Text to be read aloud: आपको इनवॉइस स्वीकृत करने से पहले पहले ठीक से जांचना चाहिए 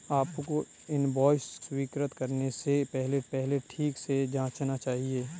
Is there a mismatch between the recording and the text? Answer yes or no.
no